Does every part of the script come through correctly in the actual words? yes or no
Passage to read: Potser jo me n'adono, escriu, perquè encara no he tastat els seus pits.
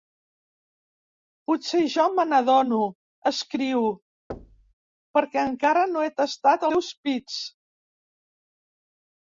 no